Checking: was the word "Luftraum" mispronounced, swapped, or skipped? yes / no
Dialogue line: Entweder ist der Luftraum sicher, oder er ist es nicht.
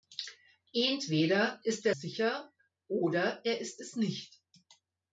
yes